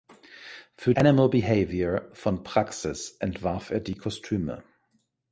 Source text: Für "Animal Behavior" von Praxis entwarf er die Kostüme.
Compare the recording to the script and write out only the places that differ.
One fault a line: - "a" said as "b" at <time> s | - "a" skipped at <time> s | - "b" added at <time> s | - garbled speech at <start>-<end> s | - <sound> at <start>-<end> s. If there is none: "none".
none